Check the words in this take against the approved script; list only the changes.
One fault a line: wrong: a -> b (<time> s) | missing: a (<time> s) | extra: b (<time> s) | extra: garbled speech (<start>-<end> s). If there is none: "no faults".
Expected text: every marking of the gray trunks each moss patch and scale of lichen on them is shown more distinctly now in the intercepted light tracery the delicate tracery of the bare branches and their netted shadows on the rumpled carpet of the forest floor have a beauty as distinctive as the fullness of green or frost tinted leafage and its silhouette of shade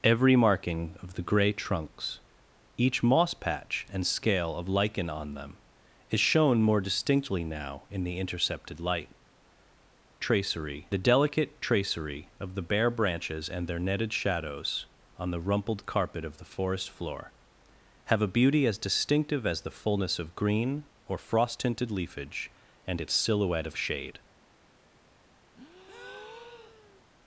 no faults